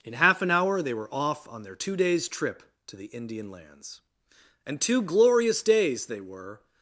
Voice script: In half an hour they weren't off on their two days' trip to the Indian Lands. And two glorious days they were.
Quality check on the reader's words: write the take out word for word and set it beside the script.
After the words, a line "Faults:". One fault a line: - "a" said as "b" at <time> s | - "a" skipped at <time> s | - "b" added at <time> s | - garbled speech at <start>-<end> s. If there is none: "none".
In half an hour they were off on their two days' trip to the Indian Lands. And two glorious days they were.
Faults:
- "weren't" said as "were" at 0.9 s